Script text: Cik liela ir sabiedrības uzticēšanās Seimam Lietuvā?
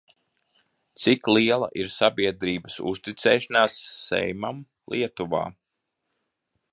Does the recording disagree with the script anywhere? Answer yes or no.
no